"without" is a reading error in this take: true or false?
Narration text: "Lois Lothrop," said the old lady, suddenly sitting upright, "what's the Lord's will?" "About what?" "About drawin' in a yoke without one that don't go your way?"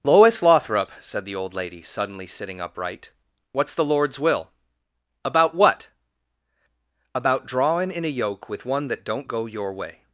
true